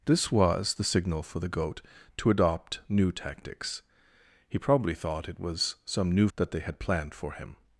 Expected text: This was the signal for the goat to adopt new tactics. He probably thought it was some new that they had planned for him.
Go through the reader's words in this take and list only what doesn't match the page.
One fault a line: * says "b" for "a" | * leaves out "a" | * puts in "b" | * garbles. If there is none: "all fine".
all fine